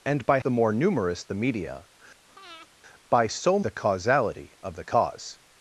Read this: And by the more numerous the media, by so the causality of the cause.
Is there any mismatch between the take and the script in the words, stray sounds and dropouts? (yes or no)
yes